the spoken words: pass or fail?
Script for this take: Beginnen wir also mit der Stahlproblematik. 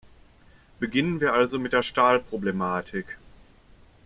pass